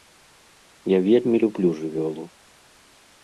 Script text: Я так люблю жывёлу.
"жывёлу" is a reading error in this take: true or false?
false